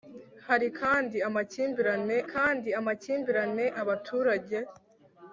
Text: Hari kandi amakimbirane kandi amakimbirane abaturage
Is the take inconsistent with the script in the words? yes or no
no